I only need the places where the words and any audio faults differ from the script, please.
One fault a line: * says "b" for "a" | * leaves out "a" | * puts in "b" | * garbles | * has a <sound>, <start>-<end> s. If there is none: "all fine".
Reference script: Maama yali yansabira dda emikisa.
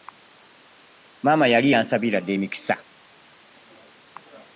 all fine